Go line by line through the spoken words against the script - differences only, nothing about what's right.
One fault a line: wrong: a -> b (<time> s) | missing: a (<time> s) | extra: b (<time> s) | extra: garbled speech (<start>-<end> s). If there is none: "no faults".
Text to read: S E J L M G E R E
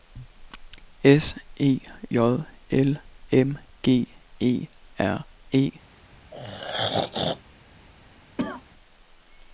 no faults